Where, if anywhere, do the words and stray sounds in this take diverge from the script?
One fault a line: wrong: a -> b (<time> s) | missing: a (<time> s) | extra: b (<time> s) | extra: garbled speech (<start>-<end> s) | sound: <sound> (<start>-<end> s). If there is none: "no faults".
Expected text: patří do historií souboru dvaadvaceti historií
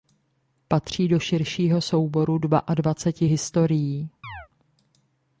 wrong: historií -> širšího (1.2 s)
sound: chirp (4.2-4.5 s)